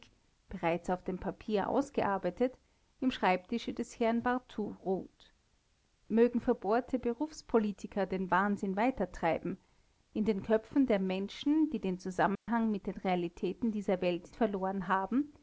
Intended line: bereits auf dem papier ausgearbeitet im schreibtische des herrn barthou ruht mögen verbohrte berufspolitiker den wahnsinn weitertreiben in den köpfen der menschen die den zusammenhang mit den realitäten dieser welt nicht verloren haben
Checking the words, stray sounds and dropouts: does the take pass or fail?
fail